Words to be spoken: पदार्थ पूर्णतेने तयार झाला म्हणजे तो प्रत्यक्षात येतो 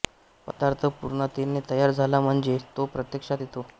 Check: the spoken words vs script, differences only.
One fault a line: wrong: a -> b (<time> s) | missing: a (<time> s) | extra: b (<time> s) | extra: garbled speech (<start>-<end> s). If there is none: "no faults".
no faults